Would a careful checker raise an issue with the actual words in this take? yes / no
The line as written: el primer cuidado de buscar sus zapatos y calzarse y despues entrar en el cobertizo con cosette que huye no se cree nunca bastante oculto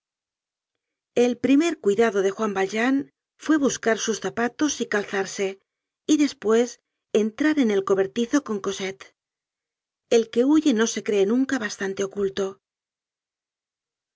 yes